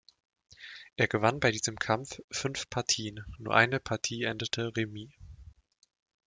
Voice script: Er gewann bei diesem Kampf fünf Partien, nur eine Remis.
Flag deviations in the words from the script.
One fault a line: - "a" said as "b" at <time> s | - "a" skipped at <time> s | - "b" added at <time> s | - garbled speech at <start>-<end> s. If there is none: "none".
- "Partie endete" added at 3.8 s